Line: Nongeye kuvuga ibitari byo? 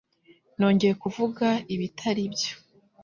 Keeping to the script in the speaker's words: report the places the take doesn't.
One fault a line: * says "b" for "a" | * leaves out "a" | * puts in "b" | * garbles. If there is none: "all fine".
all fine